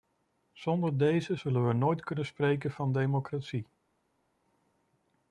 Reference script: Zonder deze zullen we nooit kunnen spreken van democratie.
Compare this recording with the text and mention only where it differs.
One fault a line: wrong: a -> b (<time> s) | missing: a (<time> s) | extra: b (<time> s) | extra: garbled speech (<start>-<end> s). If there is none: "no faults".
no faults